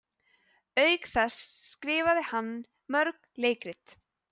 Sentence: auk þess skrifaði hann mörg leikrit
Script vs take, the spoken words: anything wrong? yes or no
no